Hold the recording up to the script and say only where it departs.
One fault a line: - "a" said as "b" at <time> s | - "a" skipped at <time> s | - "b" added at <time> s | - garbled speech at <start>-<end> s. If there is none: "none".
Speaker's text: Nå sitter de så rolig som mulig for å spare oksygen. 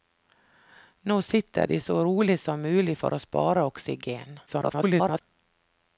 - garbled speech at 4.5-5.2 s